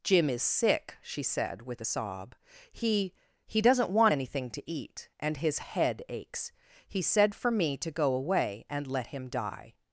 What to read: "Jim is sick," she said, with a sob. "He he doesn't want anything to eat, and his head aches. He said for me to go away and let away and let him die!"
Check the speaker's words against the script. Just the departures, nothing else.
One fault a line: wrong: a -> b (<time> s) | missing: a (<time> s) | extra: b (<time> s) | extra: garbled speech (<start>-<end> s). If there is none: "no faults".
missing: away and let (9.1 s)